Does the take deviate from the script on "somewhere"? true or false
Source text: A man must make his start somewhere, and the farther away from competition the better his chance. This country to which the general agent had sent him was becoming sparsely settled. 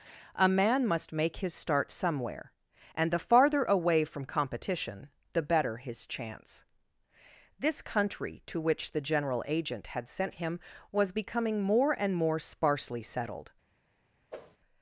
false